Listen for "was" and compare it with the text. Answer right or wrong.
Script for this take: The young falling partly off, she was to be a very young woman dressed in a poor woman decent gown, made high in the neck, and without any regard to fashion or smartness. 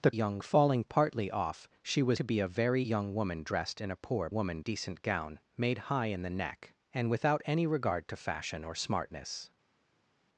right